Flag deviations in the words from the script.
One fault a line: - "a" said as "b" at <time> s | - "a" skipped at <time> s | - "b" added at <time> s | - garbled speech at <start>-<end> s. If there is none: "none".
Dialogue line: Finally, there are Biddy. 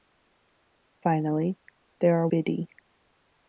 none